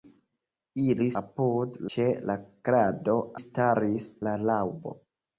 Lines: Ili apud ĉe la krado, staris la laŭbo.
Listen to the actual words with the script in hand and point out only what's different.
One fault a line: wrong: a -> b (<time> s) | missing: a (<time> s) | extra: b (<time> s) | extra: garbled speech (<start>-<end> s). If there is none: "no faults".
no faults